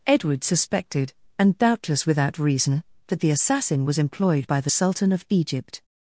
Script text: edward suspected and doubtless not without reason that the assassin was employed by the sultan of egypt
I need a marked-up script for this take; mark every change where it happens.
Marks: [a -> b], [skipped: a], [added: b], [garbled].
edward suspected and doubtless [skipped: not] without reason that the assassin was employed by the sultan of egypt